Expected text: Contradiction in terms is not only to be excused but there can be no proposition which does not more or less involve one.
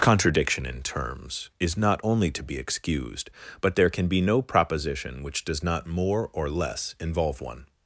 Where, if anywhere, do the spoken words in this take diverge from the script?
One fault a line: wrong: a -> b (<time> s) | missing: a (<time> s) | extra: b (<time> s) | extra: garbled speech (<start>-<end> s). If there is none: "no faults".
no faults